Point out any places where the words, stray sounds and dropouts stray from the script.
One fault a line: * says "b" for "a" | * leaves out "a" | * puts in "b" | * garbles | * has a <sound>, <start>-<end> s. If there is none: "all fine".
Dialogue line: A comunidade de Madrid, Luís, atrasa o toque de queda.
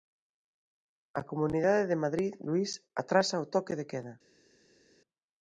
all fine